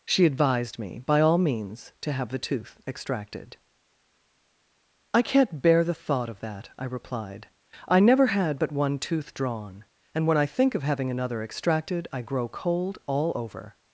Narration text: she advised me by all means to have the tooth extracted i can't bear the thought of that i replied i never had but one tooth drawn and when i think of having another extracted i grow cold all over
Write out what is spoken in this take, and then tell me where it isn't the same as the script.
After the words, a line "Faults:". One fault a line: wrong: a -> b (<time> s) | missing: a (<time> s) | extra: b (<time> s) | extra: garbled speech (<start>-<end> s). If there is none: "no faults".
she advised me by all means to have the tooth extracted i can't bear the thought of that i replied i never had but one tooth drawn and when i think of having another extracted i grow cold all over
Faults:
no faults